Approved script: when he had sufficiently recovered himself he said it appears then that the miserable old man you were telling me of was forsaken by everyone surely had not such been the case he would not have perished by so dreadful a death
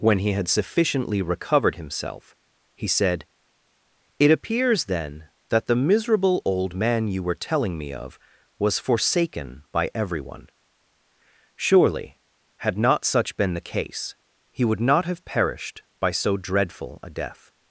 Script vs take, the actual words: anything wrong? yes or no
no